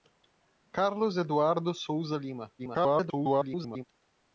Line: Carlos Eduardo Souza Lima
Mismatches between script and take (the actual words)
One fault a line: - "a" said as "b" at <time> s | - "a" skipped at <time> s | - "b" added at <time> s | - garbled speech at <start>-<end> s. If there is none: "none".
- garbled speech at 2.6-3.8 s